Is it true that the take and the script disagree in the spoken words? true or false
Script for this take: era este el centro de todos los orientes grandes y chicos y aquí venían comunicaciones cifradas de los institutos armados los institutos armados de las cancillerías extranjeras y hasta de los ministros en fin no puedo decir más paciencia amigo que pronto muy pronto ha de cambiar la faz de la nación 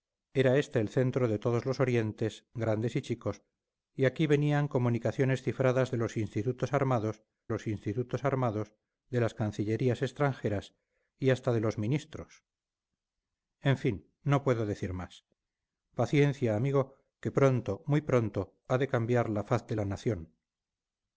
false